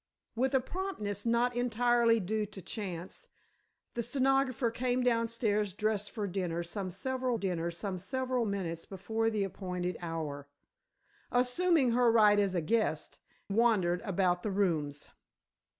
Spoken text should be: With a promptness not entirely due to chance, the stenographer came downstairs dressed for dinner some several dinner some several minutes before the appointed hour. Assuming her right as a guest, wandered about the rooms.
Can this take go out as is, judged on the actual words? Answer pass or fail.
pass